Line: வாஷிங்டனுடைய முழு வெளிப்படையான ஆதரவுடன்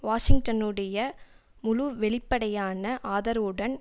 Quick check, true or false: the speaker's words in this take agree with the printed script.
true